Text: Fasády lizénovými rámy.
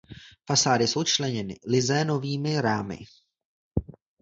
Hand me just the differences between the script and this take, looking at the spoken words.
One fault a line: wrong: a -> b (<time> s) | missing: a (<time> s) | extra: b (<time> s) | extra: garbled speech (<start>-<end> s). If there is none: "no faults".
extra: jsou členěny (0.9 s)